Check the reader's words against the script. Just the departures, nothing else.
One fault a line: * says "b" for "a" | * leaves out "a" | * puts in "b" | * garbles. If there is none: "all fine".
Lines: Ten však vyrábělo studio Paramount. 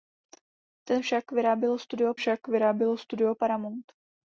* puts in "však vyrábělo studio"